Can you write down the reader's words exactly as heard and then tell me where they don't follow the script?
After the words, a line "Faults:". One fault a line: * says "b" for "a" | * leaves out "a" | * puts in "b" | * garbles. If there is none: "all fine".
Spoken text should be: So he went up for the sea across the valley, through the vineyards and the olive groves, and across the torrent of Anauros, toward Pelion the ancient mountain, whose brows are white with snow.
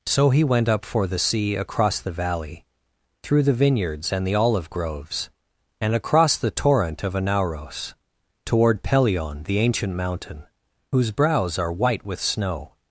So he went up for the sea across the valley, through the vineyards and the olive groves, and across the torrent of Anauros, toward Pelion the ancient mountain, whose brows are white with snow.
Faults:
all fine